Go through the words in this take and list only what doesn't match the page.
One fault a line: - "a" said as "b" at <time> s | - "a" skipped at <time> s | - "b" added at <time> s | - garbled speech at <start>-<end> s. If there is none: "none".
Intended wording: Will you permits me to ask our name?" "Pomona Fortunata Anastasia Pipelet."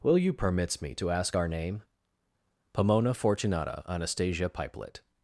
none